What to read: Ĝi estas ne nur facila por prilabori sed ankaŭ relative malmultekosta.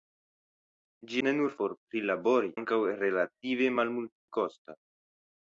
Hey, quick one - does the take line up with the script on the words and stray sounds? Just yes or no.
no